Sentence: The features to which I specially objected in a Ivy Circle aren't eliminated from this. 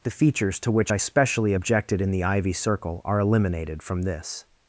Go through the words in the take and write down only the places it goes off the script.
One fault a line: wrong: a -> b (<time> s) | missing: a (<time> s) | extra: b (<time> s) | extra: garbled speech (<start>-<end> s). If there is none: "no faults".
wrong: a -> the (2.1 s)
wrong: aren't -> are (3.0 s)